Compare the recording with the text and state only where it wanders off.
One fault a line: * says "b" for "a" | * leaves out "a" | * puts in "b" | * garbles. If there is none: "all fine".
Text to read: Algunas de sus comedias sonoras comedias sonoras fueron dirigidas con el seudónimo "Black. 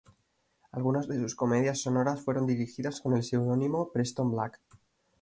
* leaves out "comedias sonoras"
* puts in "Preston"